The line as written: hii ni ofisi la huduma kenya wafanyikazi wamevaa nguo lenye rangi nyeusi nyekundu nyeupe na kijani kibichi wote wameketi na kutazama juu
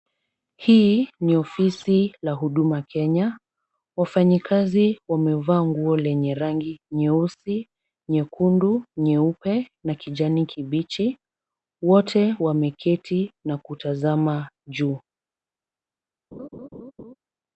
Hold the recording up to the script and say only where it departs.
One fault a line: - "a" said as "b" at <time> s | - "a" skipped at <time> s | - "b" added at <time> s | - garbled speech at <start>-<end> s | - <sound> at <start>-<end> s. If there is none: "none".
- laugh at 16.3-17.2 s